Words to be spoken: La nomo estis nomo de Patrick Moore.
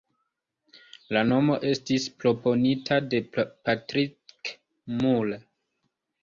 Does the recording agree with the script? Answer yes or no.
no